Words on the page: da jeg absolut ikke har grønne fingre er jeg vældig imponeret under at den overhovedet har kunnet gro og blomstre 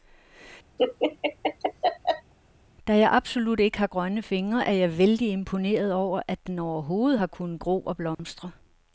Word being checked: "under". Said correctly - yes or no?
no